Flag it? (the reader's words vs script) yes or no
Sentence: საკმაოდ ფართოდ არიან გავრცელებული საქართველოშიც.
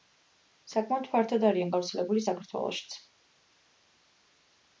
no